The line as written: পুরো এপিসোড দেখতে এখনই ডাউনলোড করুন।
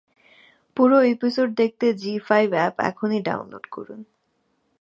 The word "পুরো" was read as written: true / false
true